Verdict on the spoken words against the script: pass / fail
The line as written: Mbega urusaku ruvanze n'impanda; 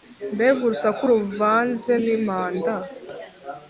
pass